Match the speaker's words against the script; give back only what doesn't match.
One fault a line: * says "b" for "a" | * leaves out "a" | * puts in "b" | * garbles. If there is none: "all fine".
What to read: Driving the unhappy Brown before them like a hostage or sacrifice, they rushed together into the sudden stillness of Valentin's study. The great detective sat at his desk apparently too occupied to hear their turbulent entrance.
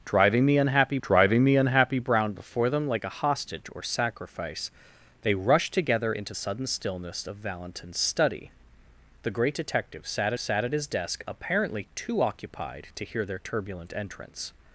* puts in "driving the unhappy"
* leaves out "the"
* puts in "sat"